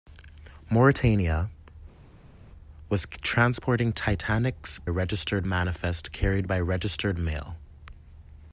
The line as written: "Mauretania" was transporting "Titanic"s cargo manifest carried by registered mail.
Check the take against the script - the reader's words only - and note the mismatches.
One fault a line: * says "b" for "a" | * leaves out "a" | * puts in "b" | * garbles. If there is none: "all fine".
* says "registered" for "cargo"